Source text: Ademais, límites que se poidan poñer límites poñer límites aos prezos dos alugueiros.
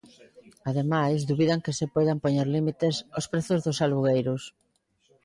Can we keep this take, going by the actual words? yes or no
no